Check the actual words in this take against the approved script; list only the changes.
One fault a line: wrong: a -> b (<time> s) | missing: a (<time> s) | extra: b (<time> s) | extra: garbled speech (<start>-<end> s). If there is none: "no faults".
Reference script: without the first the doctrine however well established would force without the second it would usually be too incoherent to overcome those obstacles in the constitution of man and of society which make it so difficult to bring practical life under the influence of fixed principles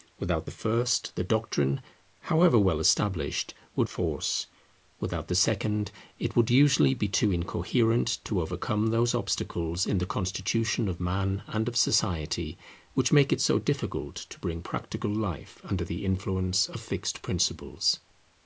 no faults